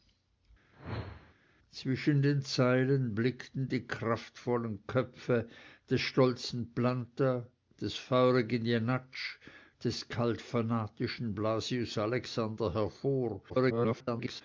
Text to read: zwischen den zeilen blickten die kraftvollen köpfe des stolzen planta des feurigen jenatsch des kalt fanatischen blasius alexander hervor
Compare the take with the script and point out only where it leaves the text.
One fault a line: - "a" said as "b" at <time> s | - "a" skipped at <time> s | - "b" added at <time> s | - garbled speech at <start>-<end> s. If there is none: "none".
- garbled speech at 13.5-14.4 s